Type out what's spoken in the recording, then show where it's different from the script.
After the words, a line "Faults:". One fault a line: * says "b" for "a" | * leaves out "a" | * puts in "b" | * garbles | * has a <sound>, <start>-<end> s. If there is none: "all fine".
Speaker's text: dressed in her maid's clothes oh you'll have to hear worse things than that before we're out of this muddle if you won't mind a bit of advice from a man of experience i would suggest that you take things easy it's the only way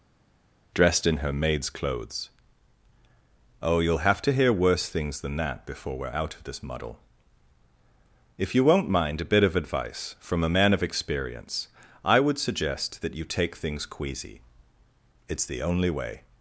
dressed in her maid's clothes oh you'll have to hear worse things than that before we're out of this muddle if you won't mind a bit of advice from a man of experience i would suggest that you take things queasy it's the only way
Faults:
* says "queasy" for "easy"